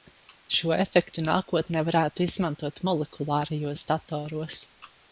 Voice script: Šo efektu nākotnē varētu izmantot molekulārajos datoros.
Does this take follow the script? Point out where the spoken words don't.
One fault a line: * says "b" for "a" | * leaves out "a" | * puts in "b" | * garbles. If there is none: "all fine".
all fine